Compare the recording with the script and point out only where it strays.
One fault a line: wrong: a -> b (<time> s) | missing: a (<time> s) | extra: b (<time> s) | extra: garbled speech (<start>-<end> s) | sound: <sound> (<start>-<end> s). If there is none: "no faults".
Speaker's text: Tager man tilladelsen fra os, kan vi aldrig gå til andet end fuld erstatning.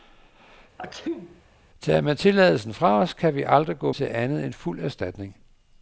sound: sneeze (0.8-1.4 s)